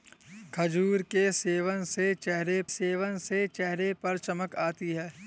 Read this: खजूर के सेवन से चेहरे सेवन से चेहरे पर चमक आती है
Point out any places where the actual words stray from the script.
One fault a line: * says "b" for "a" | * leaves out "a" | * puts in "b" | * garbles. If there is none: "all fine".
all fine